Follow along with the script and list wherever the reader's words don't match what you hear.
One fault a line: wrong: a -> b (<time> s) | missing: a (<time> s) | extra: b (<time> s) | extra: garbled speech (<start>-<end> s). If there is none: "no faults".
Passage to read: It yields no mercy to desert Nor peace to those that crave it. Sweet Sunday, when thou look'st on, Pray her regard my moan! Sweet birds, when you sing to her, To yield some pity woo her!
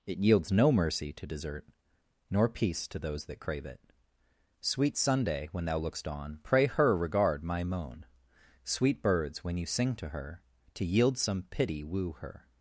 no faults